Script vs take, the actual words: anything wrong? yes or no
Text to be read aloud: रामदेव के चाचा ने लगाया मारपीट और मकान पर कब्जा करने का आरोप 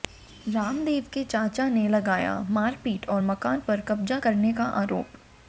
no